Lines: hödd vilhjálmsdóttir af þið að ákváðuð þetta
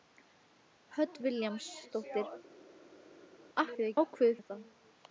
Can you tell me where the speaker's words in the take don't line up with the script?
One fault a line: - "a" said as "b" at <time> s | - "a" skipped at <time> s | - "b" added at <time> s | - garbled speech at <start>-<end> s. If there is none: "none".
none